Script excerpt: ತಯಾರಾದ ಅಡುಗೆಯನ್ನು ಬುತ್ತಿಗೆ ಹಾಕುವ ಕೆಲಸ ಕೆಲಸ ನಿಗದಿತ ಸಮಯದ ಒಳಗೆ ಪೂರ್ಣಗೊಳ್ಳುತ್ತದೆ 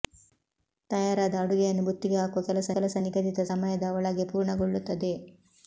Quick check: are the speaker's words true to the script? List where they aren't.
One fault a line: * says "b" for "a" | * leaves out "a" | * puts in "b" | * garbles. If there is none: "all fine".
all fine